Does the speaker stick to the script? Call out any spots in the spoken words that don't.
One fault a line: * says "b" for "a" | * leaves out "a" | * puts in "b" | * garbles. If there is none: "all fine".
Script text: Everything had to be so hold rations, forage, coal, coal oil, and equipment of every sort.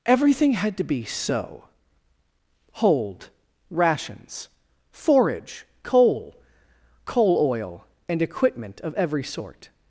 all fine